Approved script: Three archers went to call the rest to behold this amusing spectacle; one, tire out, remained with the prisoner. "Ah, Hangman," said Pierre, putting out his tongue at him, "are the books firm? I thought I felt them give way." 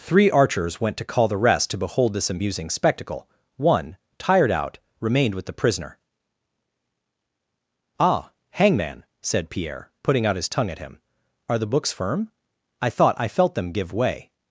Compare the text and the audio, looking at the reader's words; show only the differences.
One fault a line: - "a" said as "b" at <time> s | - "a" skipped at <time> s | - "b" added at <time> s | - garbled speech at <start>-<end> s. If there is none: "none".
- "tire" said as "tired" at 4.2 s